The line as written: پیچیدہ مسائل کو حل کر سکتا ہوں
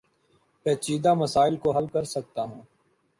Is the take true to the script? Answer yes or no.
yes